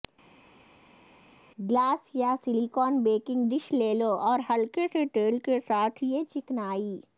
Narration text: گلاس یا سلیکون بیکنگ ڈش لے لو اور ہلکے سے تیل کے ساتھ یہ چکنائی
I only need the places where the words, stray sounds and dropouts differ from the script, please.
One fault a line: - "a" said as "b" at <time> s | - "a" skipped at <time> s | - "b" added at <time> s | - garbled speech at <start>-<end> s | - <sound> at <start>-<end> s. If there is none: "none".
none